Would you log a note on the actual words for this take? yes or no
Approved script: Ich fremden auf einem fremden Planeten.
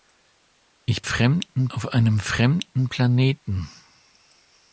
no